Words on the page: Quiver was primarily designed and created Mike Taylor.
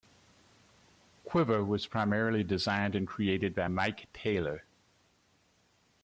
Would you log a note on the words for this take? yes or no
yes